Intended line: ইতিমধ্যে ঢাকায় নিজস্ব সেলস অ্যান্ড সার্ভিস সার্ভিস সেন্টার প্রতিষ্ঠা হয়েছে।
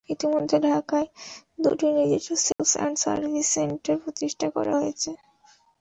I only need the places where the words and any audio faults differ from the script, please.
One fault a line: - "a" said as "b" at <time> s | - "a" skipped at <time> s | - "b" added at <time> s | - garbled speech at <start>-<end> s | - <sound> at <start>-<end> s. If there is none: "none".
- "দুটি" added at 1.6 s
- dropout at 2.5-2.6 s
- "সার্ভিস" skipped at 3.5 s
- "করা" added at 4.6 s